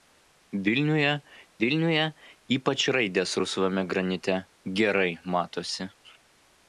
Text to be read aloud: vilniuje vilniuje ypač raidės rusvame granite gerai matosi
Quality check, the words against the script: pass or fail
pass